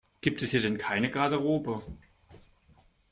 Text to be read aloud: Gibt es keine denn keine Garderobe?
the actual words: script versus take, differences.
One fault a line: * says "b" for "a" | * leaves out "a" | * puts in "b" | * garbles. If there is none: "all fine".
* says "hier" for "keine"